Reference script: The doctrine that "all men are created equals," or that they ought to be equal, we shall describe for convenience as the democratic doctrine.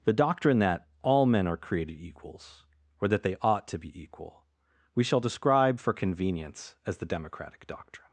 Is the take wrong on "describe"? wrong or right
right